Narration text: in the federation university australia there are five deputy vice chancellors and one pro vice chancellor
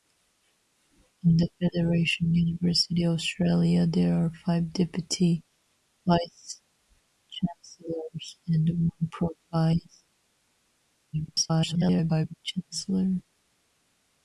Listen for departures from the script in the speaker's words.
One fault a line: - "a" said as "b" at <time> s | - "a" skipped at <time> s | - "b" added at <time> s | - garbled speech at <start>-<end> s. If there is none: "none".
- garbled speech at 11.1-12.3 s